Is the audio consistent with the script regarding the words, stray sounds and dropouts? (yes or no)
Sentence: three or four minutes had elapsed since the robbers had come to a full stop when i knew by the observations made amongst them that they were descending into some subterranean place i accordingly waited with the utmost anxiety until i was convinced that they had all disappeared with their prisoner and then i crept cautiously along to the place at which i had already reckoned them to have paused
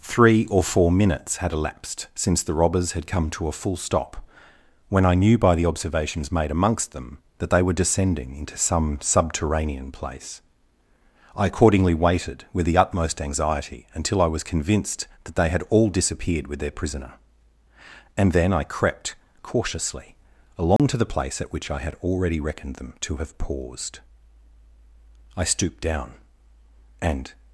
no